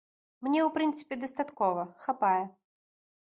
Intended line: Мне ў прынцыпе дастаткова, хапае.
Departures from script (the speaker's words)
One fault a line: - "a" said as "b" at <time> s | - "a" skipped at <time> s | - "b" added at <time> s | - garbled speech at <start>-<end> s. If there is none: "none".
none